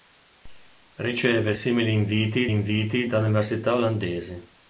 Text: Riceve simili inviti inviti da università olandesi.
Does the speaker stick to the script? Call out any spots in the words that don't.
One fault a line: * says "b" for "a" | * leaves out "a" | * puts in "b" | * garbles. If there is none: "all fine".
all fine